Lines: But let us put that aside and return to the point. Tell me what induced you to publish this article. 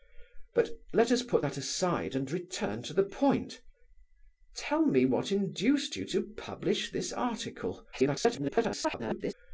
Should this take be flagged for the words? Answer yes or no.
yes